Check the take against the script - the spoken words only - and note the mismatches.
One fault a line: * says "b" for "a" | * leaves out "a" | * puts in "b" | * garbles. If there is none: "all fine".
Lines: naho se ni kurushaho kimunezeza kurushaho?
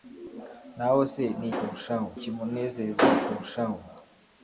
all fine